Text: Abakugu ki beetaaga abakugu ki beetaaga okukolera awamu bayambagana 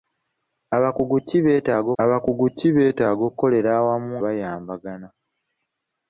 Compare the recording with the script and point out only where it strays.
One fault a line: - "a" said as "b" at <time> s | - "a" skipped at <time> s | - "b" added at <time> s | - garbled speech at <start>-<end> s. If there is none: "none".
none